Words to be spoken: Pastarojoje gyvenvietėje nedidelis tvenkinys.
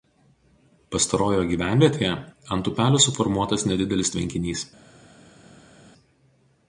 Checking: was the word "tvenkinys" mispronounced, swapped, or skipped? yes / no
no